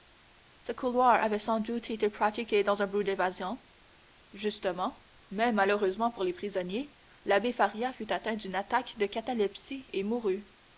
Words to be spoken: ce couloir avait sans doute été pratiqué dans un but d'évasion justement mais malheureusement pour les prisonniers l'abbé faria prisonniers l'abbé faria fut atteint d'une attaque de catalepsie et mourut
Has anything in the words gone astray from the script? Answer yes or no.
yes